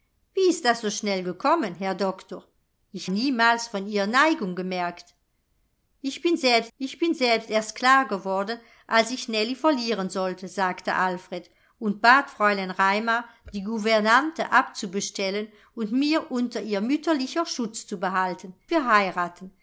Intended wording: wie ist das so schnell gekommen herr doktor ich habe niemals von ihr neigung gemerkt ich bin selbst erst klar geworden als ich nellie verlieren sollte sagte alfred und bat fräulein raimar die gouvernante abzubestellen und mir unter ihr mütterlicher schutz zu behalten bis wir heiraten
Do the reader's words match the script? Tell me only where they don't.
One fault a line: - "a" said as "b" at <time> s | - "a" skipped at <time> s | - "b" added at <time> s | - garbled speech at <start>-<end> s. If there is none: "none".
- "habe" skipped at 3.1 s
- "ich bin selbst" added at 6.8 s
- "bis" skipped at 18.5 s